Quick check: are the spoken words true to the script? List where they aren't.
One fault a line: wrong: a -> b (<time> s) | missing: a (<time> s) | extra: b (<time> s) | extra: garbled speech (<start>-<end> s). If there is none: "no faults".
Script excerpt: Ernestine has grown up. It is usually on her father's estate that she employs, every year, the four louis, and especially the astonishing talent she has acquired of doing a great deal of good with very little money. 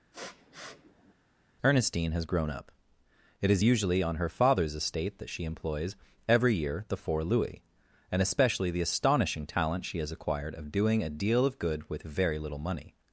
missing: great (11.1 s)